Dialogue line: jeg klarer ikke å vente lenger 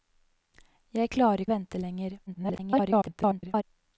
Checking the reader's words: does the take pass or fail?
fail